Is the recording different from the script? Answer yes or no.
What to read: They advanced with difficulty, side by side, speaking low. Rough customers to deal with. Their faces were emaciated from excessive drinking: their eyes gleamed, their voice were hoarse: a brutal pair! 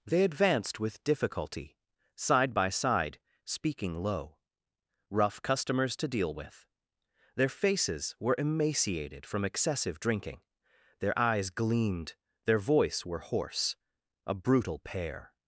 no